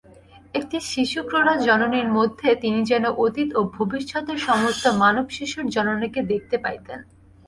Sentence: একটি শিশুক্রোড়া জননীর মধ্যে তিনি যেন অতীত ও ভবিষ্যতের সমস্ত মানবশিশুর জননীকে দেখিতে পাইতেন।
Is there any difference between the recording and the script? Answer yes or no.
no